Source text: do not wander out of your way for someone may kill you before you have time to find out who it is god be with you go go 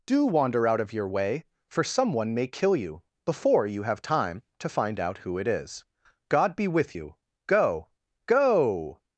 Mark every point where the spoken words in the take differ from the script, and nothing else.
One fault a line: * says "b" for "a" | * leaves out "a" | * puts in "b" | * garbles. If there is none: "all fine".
* leaves out "not"